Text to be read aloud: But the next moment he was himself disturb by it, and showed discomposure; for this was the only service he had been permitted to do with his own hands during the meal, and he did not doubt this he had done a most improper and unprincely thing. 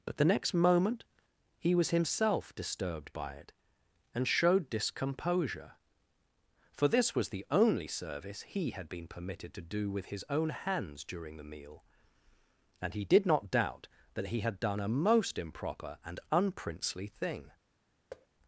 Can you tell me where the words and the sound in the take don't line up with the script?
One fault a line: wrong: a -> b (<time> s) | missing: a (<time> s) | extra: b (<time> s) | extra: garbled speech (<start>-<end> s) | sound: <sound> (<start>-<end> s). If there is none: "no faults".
wrong: disturb -> disturbed (2.5 s)
wrong: this -> that (14.2 s)
sound: thud (18.1-18.3 s)